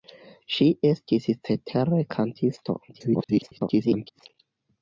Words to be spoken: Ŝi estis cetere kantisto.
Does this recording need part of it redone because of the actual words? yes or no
yes